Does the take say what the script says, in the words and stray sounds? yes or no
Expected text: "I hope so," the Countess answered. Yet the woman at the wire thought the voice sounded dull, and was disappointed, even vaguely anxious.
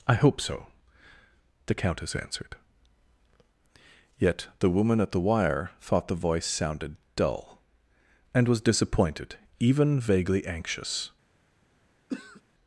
no